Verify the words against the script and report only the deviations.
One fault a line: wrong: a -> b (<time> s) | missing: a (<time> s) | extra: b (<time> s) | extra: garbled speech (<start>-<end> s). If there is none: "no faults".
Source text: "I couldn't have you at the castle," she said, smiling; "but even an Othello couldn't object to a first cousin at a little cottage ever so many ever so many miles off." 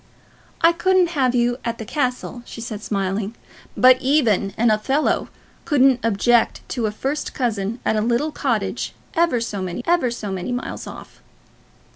no faults